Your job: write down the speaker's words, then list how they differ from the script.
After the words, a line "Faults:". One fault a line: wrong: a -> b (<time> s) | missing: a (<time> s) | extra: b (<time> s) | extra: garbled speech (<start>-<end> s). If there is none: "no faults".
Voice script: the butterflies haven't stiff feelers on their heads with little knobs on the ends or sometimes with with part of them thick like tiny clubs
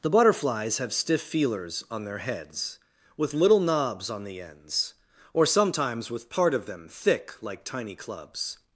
the butterflies have stiff feelers on their heads with little knobs on the ends or sometimes with part of them thick like tiny clubs
Faults:
wrong: haven't -> have (0.8 s)
missing: with (6.3 s)